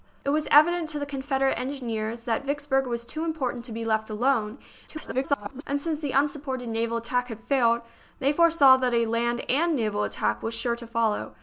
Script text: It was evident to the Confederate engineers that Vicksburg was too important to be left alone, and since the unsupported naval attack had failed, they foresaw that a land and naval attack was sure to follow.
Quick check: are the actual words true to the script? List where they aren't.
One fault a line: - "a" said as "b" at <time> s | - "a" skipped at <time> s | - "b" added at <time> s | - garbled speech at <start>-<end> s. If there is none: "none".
- garbled speech at 4.9-5.6 s